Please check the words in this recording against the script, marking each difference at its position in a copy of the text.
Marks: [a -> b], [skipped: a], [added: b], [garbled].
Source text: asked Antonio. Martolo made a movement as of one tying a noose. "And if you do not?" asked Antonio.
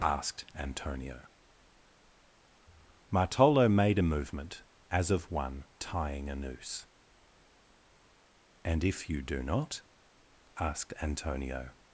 asked Antonio. Martolo made a movement as of one tying a noose. "And if you do not?" asked Antonio.